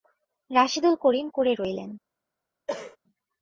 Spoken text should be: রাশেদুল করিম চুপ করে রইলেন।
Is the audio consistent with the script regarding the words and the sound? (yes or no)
no